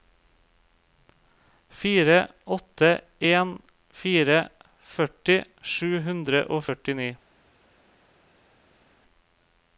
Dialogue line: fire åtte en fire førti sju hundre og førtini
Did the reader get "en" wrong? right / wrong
right